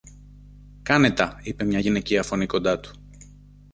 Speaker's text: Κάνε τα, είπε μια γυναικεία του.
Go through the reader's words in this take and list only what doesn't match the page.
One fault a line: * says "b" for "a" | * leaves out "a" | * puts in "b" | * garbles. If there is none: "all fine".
* puts in "φωνή κοντά"